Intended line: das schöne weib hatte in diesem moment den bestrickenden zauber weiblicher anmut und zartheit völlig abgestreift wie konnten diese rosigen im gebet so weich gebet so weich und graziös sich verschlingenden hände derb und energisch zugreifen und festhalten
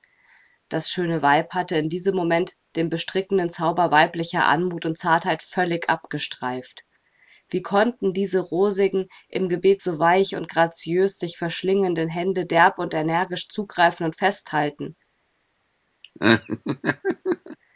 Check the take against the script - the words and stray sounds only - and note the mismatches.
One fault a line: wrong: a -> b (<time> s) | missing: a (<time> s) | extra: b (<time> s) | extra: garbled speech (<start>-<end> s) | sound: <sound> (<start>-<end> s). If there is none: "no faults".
missing: gebet so weich (10.4 s)
sound: laugh (16.0-17.6 s)